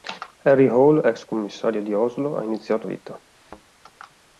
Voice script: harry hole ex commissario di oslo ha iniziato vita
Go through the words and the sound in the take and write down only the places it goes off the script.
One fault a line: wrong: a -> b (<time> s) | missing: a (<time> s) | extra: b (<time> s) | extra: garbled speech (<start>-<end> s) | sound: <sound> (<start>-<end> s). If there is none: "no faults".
sound: thud (3.3-3.6 s)